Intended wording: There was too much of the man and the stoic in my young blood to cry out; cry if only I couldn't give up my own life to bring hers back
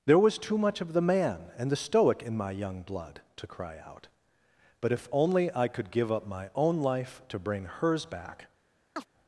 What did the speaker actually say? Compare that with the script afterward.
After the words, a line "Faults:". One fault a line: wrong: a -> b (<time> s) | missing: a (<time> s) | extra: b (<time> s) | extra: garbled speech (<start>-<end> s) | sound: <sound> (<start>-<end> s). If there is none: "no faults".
There was too much of the man and the stoic in my young blood to cry out; but if only I could give up my own life to bring hers back
Faults:
wrong: cry -> but (4.8 s)
wrong: couldn't -> could (5.7 s)
sound: chirp (9.0-9.1 s)